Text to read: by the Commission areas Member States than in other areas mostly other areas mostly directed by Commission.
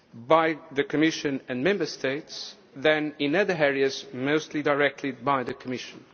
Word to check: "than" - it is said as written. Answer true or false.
true